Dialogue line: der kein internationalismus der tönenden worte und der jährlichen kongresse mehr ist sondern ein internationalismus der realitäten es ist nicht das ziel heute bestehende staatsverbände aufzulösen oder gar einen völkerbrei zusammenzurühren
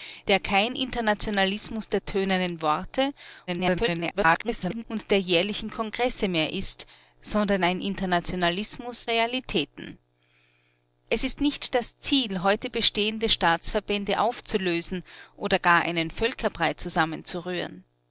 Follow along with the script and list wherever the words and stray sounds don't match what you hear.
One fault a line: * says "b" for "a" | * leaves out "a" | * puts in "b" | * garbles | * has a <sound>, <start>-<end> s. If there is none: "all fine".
* garbles
* leaves out "der"